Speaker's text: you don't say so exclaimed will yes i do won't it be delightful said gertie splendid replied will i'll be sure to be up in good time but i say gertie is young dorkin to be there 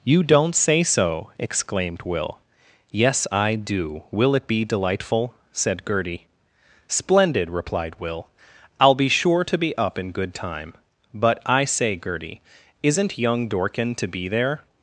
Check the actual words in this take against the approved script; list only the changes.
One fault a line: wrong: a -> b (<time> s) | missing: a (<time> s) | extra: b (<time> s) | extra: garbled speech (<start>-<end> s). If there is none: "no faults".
wrong: won't -> will (4.1 s)
wrong: is -> isn't (12.8 s)